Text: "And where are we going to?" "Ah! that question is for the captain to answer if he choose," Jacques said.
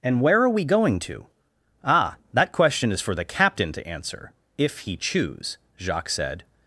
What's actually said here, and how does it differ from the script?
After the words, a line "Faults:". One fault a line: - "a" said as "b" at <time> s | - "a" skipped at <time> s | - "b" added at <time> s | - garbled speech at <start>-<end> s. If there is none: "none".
"And where are we going to?" "Ah! that question is for the captain to answer if he choose," Jacques said.
Faults:
none